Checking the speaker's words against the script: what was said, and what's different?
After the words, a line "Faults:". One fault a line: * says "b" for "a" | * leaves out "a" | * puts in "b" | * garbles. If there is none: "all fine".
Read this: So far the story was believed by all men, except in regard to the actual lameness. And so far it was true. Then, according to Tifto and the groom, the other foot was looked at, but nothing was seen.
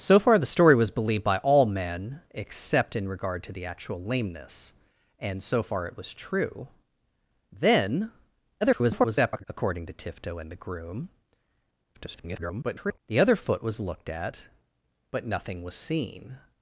So far the story was believed by all men, except in regard to the actual lameness. And so far it was true. Then, [garbled] according to Tifto and the groom, [garbled] the other foot was looked at, but nothing was seen.
Faults:
* garbles
* garbles